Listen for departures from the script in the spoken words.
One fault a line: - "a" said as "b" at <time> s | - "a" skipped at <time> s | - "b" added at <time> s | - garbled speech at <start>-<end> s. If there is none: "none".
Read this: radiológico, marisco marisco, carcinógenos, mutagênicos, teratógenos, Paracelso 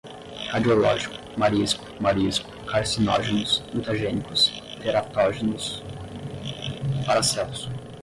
none